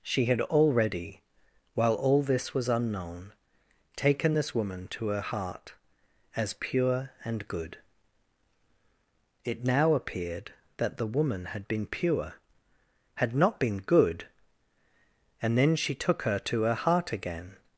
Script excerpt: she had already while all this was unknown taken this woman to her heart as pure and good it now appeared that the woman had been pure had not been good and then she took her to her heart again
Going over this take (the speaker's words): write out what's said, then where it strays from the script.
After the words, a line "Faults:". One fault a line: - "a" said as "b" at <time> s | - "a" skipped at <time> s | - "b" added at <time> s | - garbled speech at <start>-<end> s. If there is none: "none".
she had already while all this was unknown taken this woman to her heart as pure and good it now appeared that the woman had been pure had not been good and then she took her to her heart again
Faults:
none